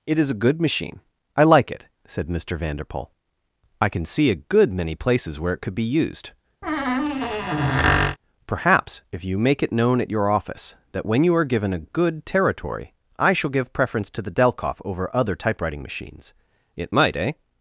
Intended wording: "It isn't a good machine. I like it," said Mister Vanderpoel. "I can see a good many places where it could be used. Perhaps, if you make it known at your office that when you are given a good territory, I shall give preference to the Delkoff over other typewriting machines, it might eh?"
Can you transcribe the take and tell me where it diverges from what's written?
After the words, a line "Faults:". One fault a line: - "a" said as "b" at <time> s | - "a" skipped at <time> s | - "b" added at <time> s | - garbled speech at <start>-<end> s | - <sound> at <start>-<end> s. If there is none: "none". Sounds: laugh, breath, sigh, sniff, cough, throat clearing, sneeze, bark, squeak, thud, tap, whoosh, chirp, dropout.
"It is a good machine. I like it," said Mister Vanderpoel. "I can see a good many places where it could be used. Perhaps, if you make it known at your office that when you are given a good territory, I shall give preference to the Delkoff over other typewriting machines, it might eh?"
Faults:
- "isn't" said as "is" at 0.2 s
- squeak at 6.6-8.2 s